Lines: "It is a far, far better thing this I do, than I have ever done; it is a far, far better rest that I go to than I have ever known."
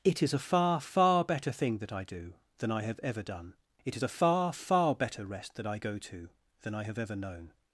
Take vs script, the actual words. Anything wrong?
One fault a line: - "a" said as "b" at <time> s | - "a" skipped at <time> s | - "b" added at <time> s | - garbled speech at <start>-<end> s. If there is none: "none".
- "this" said as "that" at 1.8 s